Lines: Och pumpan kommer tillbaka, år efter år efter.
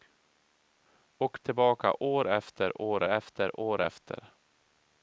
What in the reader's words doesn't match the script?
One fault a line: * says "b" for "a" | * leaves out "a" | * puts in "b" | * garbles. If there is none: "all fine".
* says "tillbaka år efter" for "pumpan kommer tillbaka"